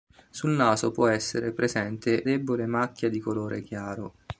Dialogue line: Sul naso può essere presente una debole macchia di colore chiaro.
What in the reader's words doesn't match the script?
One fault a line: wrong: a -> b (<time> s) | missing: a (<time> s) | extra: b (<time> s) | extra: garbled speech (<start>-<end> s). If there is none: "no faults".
missing: una (2.2 s)